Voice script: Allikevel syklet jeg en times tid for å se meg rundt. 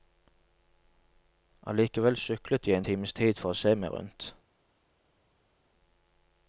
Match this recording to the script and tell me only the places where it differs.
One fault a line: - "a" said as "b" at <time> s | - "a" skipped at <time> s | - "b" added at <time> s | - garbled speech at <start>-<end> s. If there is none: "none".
none